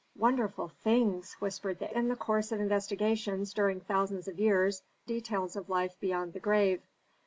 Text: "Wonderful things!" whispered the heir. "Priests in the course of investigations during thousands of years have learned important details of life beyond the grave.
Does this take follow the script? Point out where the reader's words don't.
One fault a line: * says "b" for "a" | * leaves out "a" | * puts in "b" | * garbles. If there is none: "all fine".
* leaves out "heir Priests"
* leaves out "have learned important"